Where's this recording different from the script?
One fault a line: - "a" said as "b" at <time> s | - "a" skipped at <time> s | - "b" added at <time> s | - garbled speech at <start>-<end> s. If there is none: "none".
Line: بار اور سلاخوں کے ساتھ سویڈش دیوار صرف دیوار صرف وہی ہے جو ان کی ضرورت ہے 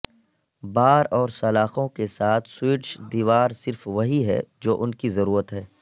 - "دیوار صرف" skipped at 3.9 s